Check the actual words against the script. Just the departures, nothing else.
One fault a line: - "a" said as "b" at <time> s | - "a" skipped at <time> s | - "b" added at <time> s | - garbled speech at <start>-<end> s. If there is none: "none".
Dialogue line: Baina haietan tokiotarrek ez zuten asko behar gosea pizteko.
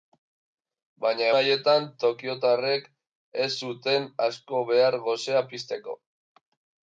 none